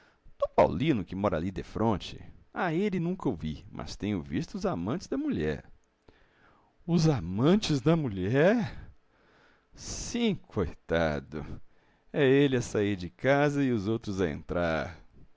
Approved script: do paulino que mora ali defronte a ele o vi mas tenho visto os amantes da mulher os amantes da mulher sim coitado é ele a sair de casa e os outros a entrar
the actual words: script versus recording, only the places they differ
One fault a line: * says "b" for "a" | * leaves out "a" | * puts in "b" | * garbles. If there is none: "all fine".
* puts in "nunca"